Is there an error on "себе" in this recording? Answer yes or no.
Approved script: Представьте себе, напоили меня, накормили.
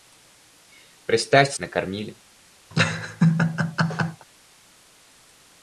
yes